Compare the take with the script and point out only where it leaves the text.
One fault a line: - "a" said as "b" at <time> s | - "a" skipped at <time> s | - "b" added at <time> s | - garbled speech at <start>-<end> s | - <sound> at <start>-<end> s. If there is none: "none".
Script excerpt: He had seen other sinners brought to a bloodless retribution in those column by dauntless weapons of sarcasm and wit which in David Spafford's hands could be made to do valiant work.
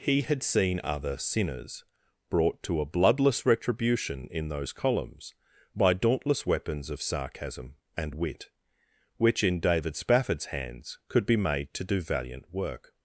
- "column" said as "columns" at 4.7 s